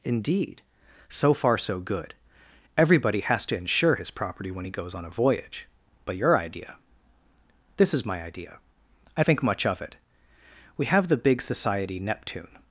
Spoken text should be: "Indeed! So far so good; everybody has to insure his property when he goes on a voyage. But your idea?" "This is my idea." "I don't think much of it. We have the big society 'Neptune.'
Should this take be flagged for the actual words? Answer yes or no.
yes